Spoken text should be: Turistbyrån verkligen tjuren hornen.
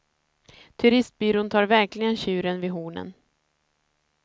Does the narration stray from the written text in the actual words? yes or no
yes